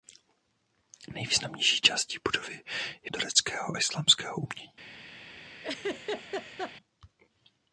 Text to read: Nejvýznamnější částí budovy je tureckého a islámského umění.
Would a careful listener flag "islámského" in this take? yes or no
no